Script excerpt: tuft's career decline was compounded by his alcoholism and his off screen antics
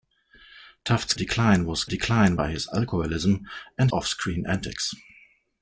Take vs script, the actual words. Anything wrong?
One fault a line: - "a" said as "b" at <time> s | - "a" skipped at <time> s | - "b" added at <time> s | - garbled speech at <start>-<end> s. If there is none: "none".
- "career" skipped at 1.1 s
- "compounded" said as "decline" at 1.8 s
- "his" skipped at 3.9 s